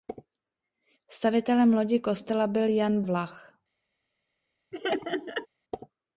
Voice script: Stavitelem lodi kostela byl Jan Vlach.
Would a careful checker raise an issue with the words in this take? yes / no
no